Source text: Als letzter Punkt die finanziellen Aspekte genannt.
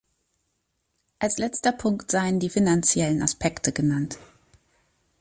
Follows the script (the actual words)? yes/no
no